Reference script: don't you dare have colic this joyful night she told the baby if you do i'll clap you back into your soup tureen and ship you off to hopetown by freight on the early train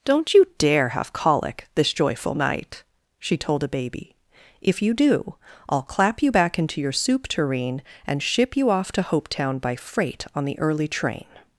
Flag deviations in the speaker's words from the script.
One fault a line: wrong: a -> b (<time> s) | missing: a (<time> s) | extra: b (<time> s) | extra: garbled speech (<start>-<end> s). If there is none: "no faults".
wrong: the -> a (3.6 s)